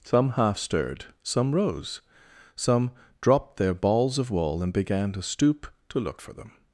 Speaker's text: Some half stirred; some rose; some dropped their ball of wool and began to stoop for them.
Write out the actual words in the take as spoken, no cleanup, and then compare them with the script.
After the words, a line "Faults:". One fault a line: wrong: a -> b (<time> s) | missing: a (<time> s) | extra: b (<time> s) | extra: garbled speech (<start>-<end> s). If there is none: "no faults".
Some half stirred; some rose; some dropped their balls of wool and began to stoop to look for them.
Faults:
wrong: ball -> balls (3.7 s)
extra: to look (5.9 s)